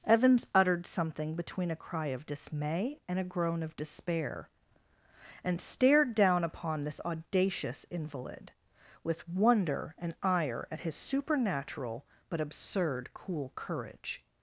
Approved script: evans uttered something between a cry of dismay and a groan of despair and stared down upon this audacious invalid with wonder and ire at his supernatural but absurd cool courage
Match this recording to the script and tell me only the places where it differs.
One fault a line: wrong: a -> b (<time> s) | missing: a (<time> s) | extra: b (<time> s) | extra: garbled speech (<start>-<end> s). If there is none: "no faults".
no faults